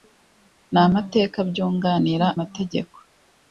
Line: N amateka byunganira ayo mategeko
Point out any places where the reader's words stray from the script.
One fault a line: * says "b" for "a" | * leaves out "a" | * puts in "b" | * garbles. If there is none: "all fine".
* leaves out "ayo"